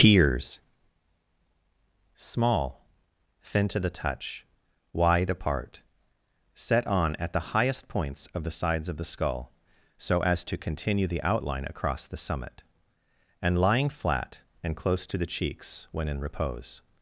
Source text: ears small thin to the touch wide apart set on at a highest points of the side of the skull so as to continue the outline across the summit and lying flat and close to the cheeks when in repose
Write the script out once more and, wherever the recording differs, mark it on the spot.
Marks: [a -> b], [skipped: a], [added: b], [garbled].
ears small thin to the touch wide apart set on at [a -> the] highest points of the [side -> sides] of the skull so as to continue the outline across the summit and lying flat and close to the cheeks when in repose